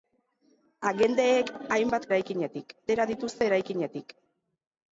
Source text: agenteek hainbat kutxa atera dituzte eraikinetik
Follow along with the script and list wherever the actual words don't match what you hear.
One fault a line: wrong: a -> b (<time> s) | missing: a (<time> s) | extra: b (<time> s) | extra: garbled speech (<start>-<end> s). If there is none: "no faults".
wrong: kutxa -> eraikinetik (2.1 s)